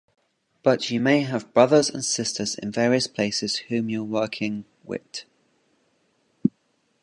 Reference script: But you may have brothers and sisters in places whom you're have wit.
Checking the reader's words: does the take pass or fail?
fail